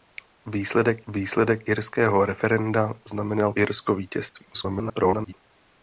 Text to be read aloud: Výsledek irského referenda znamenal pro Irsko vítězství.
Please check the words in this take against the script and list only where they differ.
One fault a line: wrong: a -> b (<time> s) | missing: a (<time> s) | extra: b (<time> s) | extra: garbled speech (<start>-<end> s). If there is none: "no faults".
extra: výsledek (1.1 s)
missing: pro (3.5 s)
extra: garbled speech (4.5-5.3 s)